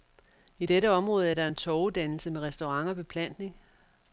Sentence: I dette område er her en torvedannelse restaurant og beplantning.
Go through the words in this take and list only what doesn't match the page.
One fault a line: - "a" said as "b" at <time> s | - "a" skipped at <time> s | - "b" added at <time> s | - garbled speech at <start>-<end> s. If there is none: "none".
- "her" said as "der" at 1.3 s
- "med" added at 2.3 s